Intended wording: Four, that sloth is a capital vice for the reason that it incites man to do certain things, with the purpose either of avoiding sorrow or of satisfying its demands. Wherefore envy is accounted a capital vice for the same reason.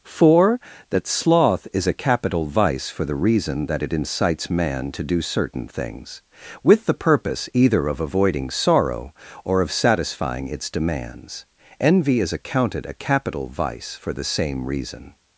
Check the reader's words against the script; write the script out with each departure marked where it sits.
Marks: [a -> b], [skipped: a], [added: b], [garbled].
Four, that sloth is a capital vice for the reason that it incites man to do certain things, with the purpose either of avoiding sorrow or of satisfying its demands. [skipped: Wherefore] envy is accounted a capital vice for the same reason.